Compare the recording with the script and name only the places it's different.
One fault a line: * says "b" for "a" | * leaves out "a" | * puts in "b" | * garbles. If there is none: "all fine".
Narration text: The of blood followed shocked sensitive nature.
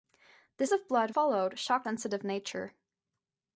all fine